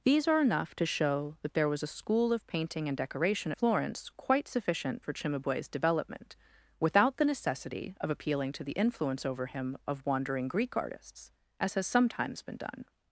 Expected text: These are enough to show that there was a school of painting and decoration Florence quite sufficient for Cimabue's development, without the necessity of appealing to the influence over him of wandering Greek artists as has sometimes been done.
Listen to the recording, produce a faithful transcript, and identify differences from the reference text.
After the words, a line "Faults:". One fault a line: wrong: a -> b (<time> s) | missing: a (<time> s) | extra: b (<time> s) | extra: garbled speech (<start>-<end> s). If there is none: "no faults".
These are enough to show that there was a school of painting and decoration Florence quite sufficient for Cimabue's development, without the necessity of appealing to the influence over him of wandering Greek artists as has sometimes been done.
Faults:
no faults